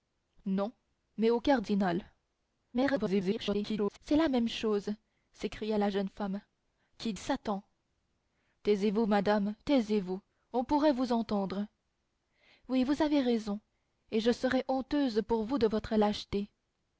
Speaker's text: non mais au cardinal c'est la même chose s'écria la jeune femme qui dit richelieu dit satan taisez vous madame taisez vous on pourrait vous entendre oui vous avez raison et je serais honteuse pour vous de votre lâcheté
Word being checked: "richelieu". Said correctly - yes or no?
no